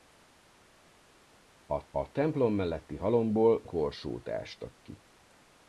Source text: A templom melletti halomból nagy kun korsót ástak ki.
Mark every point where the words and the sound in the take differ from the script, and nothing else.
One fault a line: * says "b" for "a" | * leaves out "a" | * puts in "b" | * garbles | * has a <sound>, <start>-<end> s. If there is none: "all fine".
* puts in "a"
* leaves out "nagy kun"